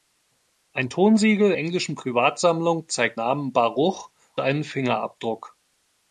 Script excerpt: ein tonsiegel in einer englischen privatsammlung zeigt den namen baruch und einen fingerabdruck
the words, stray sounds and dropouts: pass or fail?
fail